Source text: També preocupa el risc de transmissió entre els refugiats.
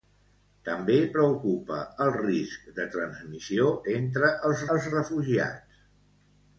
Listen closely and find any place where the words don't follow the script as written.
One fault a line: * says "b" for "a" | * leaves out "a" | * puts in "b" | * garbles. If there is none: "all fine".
* puts in "els"